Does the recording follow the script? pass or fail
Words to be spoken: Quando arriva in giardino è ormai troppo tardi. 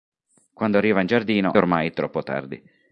fail